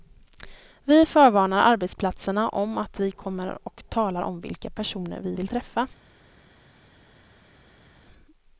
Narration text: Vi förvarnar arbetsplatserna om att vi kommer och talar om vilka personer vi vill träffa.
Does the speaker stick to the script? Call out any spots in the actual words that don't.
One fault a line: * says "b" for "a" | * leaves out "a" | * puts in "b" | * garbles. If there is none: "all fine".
all fine